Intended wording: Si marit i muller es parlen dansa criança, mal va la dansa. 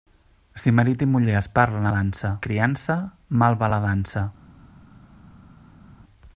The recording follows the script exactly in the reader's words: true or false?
true